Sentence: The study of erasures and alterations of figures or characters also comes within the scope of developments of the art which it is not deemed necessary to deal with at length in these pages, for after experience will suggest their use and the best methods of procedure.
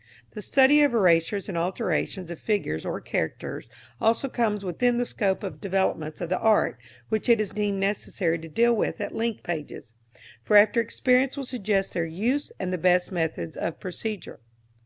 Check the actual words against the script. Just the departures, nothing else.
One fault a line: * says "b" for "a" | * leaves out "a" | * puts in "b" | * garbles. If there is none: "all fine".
* leaves out "not"
* leaves out "in these"